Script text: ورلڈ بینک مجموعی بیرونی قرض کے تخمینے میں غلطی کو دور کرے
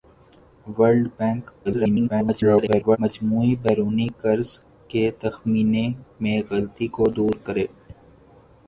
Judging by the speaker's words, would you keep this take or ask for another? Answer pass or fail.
fail